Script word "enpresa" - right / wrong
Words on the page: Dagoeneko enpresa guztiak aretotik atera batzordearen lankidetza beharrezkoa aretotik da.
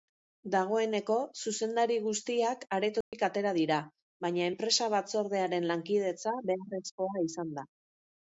wrong